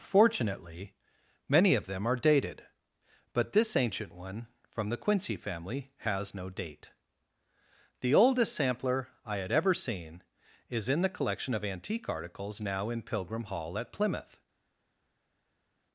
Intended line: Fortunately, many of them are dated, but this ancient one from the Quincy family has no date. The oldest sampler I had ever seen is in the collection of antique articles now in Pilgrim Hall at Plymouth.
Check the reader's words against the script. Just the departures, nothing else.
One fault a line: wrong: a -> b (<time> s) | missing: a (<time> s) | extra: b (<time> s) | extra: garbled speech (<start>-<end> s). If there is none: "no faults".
no faults